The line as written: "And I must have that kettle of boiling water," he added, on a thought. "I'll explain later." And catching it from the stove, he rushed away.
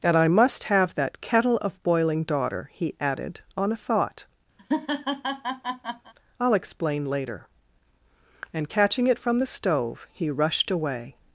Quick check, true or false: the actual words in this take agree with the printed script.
false